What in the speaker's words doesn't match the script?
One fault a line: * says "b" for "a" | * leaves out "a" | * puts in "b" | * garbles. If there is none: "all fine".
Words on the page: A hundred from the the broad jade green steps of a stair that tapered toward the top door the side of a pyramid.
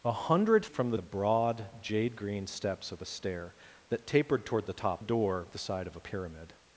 all fine